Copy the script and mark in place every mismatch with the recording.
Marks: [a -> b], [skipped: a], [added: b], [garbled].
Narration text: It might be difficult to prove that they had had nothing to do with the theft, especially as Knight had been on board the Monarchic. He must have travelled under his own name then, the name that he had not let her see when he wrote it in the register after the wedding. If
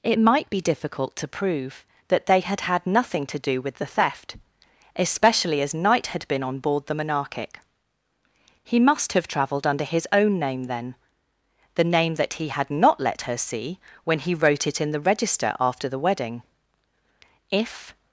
It might be difficult to prove that they had had nothing to do with the theft, especially as Knight had been on board the Monarchic. He must have travelled under his own name then, the name that he had not let her see when he wrote it in the register after the wedding. If